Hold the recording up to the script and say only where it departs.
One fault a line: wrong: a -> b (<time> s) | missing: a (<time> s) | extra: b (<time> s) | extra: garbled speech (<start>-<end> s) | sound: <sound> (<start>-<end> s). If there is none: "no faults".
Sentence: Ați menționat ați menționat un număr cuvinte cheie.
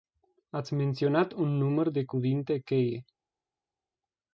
missing: ați menționat (1.3 s)
extra: de (1.9 s)